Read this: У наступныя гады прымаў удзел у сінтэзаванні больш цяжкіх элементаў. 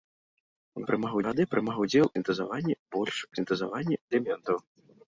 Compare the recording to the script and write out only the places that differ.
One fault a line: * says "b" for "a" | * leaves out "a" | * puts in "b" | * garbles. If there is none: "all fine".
* says "прымаў" for "наступныя"
* leaves out "у"
* says "сінтэзаванні" for "цяжкіх"